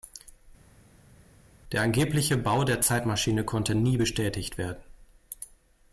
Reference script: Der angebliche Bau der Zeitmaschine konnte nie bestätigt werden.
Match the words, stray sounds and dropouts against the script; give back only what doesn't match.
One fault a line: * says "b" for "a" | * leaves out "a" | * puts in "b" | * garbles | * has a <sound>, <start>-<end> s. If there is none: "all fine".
all fine